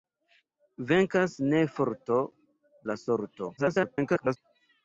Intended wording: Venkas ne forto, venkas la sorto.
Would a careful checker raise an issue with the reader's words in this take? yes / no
yes